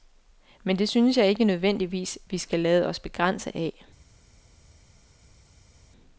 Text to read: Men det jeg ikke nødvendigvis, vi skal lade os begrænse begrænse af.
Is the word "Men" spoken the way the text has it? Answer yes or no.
yes